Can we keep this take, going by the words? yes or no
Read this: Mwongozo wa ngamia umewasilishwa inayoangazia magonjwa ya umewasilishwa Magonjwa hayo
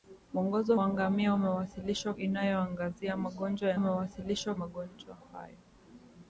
yes